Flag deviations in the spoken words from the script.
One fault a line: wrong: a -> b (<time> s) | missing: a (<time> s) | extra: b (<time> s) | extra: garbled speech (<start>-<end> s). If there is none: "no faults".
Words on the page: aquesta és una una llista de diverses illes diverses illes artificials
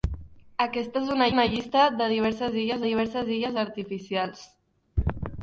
no faults